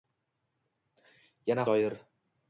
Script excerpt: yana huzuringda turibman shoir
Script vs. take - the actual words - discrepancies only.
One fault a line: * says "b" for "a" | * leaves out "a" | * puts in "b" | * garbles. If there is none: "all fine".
* leaves out "huzuringda turibman"